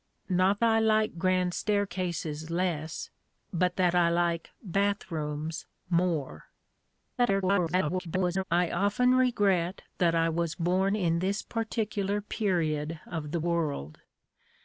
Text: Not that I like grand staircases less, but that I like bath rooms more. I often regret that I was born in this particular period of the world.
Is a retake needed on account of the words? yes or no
yes